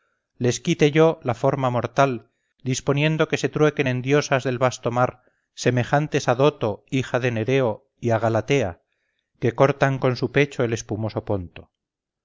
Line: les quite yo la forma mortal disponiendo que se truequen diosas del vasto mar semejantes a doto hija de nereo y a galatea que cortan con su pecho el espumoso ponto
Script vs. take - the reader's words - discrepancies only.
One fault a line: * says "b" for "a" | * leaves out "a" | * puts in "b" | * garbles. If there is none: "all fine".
* puts in "en"